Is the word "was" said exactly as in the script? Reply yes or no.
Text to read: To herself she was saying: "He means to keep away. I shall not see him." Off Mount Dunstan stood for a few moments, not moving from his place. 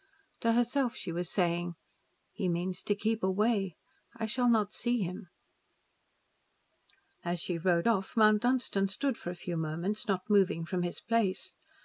yes